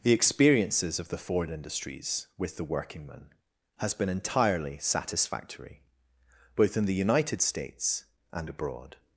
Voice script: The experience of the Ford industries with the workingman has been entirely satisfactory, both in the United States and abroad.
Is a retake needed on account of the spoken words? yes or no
yes